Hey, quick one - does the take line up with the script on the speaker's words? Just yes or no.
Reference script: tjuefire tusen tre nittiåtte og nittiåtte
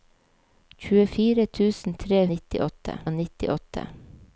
yes